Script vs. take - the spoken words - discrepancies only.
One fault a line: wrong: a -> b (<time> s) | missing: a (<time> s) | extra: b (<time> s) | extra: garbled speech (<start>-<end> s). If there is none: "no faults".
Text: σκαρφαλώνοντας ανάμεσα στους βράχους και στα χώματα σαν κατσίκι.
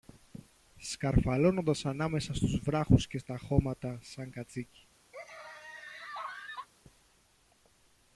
no faults